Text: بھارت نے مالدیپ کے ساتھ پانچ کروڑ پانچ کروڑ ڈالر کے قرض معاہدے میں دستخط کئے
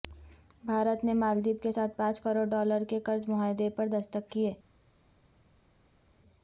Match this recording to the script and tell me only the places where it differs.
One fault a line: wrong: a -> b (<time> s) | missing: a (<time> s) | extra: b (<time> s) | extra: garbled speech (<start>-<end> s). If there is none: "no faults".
missing: پانچ کروڑ (2.5 s)
wrong: میں -> پر (3.7 s)